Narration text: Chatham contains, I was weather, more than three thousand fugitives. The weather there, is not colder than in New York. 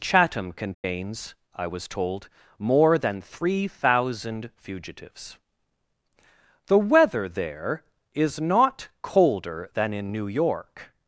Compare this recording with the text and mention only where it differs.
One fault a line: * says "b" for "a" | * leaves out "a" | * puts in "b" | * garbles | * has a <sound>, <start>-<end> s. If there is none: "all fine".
* has a dropout, 0.7-0.8 s
* says "told" for "weather"